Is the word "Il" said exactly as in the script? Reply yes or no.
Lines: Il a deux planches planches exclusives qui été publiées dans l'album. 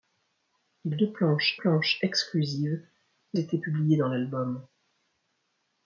yes